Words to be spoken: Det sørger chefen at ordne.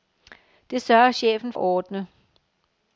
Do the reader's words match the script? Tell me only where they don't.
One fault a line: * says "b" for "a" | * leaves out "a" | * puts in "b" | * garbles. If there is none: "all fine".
all fine